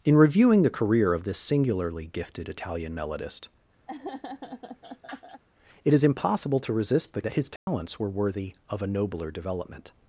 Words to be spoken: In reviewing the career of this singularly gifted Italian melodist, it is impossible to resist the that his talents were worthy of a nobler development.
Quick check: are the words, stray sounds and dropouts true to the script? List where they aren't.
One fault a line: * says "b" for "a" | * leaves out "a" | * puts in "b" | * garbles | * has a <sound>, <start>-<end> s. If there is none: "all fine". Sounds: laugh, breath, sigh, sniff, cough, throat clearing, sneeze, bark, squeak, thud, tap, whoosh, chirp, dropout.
* has a laugh, 3.9-5.4 s
* has a dropout, 7.6-7.7 s